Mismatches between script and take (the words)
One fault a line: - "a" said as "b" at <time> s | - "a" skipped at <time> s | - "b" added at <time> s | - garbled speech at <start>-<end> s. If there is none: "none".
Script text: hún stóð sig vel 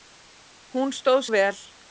- "sig" skipped at 1.2 s